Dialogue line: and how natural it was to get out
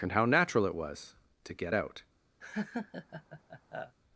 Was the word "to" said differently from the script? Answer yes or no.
no